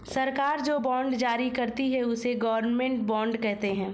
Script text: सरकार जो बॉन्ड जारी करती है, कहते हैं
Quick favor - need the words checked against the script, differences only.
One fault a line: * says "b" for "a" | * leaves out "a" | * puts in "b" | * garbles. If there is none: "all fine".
* puts in "उसे गवर्नमेंट बॉन्ड"